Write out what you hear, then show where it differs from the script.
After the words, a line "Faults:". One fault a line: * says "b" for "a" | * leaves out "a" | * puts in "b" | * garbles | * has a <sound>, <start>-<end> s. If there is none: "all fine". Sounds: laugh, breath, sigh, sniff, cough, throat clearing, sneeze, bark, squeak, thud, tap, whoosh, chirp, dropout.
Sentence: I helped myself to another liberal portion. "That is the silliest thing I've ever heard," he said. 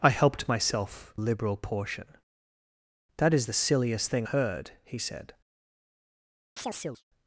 I helped myself liberal portion. "That is the silliest thing Heard," he said.
Faults:
* leaves out "to another"
* leaves out "I've ever"
* has a chirp, 6.6-7.0 s